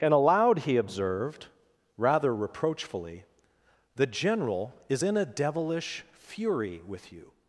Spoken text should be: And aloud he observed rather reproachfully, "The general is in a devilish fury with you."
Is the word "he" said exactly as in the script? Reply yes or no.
yes